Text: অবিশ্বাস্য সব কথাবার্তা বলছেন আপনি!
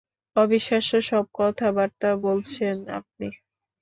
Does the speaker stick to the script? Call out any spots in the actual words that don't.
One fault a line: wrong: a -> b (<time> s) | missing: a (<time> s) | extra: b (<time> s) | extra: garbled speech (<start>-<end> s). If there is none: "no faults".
no faults